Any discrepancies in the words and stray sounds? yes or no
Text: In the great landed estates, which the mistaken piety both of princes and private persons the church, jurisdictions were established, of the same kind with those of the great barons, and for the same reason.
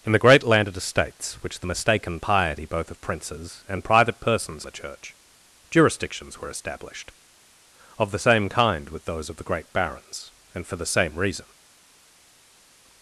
no